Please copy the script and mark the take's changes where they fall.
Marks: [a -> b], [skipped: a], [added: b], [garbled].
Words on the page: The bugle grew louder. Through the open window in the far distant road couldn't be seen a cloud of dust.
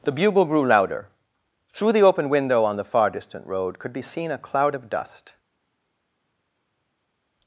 The bugle grew louder. Through the open window [in -> on] the far distant road [couldn't -> could] be seen a cloud of dust.